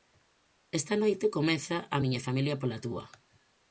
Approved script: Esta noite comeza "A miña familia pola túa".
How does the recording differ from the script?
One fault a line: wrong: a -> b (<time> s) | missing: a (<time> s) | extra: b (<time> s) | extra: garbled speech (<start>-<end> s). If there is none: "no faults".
no faults